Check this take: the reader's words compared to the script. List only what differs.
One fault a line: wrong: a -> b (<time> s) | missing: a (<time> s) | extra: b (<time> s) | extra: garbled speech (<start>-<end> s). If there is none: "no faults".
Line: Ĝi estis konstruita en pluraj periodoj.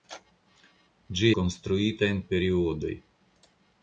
missing: estis (1.3 s)
missing: pluraj (2.2 s)